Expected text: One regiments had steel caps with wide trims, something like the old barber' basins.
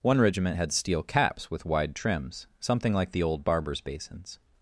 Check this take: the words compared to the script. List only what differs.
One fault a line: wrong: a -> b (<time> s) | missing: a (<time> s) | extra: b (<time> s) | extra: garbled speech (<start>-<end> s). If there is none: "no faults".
wrong: regiments -> regiment (0.2 s)
wrong: barber -> barbers (3.4 s)